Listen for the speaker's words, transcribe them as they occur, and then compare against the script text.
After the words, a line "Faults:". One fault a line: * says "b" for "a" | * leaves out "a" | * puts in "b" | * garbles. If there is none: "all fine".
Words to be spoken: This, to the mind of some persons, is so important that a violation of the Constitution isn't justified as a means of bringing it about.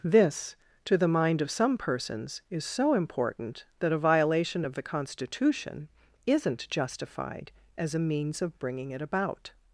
This, to the mind of some persons, is so important that a violation of the Constitution isn't justified as a means of bringing it about.
Faults:
all fine